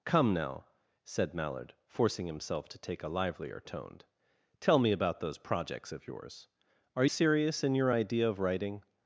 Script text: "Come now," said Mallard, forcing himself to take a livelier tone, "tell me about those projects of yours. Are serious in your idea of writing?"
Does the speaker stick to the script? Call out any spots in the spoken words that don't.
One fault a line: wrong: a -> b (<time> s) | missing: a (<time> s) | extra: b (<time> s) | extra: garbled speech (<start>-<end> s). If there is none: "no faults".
no faults